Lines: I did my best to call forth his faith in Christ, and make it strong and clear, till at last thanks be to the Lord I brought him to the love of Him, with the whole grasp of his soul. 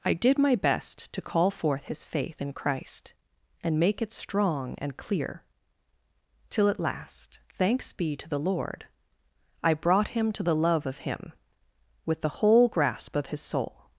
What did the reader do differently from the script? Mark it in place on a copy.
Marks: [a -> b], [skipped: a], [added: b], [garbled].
I did my best to call forth his faith in Christ, and make it strong and clear, till at last thanks be to the Lord I brought him to the love of Him, with the whole grasp of his soul.